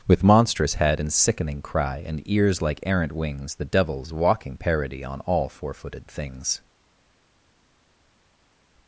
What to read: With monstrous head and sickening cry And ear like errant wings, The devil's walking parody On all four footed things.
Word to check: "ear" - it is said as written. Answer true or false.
false